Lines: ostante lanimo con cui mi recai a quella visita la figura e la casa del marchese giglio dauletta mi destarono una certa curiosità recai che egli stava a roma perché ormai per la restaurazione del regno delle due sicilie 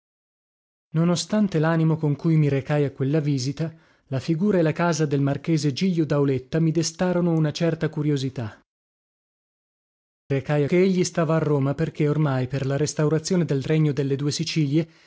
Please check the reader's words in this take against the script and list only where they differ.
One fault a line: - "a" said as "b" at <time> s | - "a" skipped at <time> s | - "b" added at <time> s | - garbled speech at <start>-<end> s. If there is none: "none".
none